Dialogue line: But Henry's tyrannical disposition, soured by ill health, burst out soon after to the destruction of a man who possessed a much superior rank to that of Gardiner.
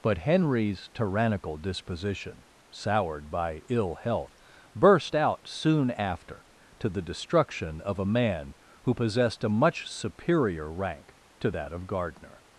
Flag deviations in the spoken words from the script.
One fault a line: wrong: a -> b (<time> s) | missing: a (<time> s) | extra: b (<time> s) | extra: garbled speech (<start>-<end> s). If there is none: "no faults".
no faults